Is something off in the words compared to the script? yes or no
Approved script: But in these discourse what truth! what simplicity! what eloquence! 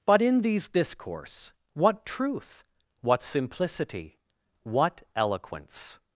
no